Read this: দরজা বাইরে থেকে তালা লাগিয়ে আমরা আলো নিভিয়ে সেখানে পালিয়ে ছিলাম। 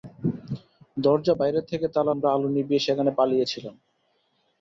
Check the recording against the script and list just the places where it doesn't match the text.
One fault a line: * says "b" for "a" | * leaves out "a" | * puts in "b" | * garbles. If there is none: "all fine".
* leaves out "লাগিয়ে"